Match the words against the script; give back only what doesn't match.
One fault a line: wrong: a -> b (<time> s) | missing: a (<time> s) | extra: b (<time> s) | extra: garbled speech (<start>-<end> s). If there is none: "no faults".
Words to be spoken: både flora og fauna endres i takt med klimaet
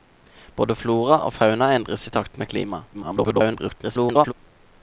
extra: garbled speech (2.9-4.3 s)